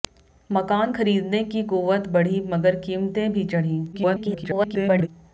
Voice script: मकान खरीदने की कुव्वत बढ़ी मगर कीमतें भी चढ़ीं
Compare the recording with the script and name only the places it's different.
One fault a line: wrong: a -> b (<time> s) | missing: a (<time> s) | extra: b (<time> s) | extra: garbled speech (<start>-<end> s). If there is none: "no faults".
extra: garbled speech (3.9-5.1 s)